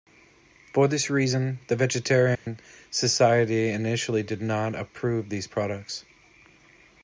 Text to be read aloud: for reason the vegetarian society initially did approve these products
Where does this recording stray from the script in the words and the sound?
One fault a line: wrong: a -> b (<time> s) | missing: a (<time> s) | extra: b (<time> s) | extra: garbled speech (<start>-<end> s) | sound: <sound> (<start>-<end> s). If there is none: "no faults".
extra: this (0.9 s)
sound: dropout (2.3-2.5 s)
extra: not (4.4 s)